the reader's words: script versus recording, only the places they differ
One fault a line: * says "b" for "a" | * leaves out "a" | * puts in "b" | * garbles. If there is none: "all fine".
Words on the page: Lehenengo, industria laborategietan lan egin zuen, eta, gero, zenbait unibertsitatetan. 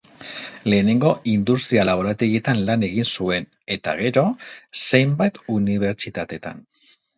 all fine